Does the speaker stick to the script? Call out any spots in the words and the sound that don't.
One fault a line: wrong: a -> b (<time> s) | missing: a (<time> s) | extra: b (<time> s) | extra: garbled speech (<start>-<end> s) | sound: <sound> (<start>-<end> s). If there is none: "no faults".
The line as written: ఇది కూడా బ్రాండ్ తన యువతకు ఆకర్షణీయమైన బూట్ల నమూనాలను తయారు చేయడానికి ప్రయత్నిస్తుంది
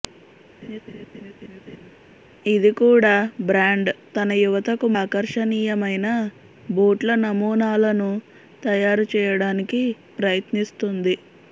sound: laugh (0.6-1.9 s)